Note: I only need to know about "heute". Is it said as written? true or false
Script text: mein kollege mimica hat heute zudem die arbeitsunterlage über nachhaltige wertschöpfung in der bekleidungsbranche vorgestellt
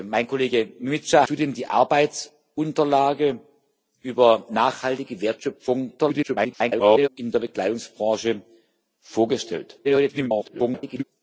false